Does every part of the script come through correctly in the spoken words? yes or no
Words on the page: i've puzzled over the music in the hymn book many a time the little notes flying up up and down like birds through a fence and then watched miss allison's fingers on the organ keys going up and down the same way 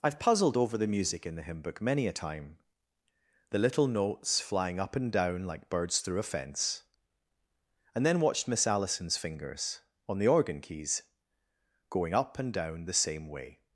no